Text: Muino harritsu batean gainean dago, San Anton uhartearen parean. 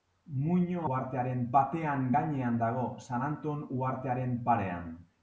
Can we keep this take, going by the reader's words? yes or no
no